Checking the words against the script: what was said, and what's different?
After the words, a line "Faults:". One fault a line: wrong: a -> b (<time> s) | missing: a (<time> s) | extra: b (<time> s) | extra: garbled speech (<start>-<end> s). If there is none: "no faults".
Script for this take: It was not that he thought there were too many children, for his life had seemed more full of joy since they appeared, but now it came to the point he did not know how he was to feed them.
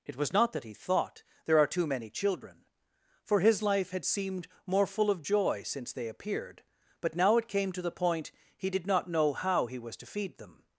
It was not that he thought there are too many children, for his life had seemed more full of joy since they appeared, but now it came to the point he did not know how he was to feed them.
Faults:
wrong: were -> are (1.6 s)